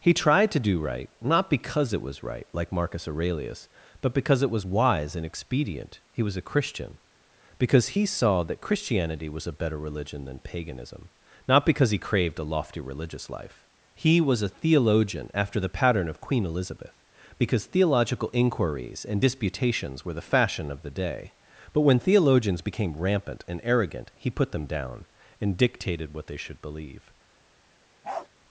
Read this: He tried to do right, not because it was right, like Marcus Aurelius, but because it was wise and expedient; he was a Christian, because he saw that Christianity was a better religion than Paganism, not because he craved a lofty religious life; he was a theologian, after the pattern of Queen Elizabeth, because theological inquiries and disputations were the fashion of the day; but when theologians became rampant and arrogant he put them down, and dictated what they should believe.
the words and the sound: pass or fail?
fail